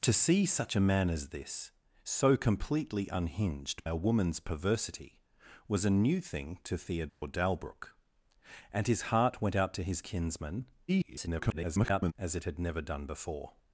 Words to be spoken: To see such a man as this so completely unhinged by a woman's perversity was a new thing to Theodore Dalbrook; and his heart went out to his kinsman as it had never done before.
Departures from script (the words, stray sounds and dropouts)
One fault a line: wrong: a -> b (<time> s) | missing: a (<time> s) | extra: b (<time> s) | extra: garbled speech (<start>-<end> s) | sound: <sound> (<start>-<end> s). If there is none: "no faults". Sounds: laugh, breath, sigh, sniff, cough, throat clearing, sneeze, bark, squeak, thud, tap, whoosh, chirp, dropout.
missing: by (3.9 s)
sound: dropout (7.1-7.2 s)
extra: garbled speech (10.9-12.1 s)